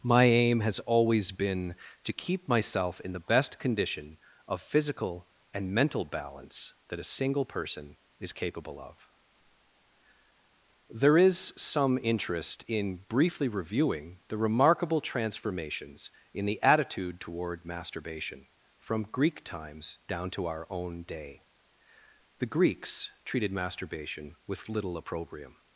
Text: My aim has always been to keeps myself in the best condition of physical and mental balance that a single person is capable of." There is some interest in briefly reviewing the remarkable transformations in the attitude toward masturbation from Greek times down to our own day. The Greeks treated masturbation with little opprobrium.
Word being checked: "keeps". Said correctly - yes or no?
no